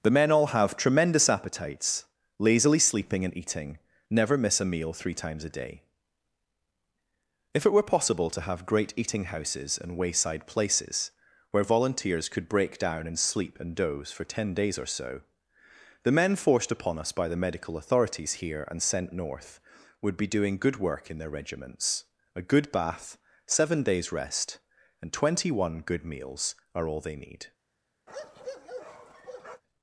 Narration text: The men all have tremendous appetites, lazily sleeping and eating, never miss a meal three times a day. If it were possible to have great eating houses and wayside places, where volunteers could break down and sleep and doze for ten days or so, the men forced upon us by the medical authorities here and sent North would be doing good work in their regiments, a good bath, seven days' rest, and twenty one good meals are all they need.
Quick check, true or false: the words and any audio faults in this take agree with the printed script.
false